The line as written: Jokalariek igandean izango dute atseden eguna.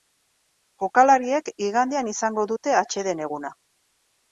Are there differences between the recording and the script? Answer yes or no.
no